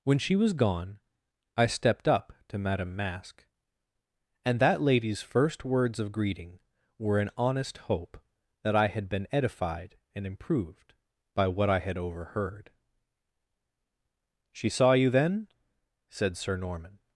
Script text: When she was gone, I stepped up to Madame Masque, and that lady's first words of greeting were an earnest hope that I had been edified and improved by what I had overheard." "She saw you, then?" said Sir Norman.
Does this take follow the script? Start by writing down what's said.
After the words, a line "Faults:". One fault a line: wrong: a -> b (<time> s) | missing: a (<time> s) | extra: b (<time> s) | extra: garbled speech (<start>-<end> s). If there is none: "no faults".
When she was gone, I stepped up to Madame Masque, and that lady's first words of greeting were an honest hope that I had been edified and improved by what I had overheard." "She saw you, then?" said Sir Norman.
Faults:
wrong: earnest -> honest (7.4 s)